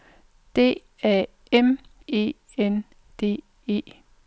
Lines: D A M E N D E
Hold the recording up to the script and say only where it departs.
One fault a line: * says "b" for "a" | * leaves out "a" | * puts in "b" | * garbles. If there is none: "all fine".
all fine